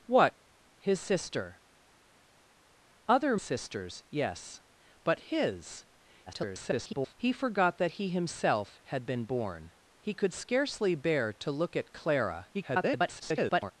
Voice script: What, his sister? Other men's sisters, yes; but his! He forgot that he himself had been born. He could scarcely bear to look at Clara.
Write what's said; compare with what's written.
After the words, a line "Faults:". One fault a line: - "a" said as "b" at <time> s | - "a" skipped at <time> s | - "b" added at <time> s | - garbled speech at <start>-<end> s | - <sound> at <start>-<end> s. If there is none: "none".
What, his sister? Other sisters, yes; but his! [garbled] He forgot that he himself had been born. He could scarcely bear to look at Clara. [garbled]
Faults:
- "men's" skipped at 3.4 s
- garbled speech at 6.3-7.1 s
- garbled speech at 12.5-13.7 s